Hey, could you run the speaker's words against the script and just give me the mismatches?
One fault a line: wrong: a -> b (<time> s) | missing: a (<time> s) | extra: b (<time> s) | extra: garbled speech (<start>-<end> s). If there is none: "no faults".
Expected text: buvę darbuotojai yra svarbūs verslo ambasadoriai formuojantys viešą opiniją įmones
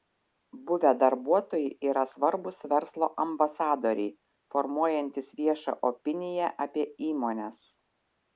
extra: apie (6.7 s)